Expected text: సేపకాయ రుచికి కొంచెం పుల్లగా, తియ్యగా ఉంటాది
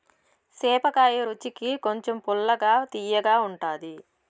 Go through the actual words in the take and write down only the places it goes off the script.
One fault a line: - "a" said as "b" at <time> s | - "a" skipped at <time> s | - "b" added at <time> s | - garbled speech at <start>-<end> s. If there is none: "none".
none